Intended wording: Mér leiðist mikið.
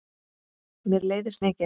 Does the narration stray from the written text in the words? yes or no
no